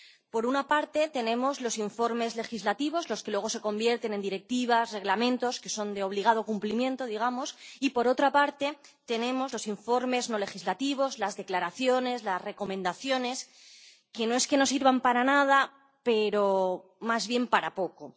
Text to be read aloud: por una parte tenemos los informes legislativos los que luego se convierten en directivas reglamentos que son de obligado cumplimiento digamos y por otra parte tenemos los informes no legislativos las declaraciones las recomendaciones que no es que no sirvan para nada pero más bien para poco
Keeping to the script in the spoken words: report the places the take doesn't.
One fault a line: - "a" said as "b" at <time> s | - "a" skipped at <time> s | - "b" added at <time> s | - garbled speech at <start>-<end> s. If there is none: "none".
none